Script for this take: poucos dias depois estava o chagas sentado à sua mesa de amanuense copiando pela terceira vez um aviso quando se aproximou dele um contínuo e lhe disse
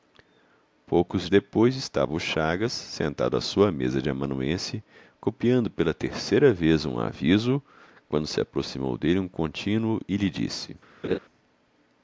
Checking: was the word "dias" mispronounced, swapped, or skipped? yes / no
yes